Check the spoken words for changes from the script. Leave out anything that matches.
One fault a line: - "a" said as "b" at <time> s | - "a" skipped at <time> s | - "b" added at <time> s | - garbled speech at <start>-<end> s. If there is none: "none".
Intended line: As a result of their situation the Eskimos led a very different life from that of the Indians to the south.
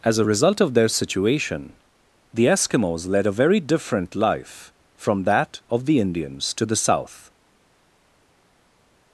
none